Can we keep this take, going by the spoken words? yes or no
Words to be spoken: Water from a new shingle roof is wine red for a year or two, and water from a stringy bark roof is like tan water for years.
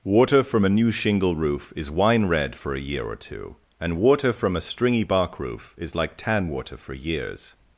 yes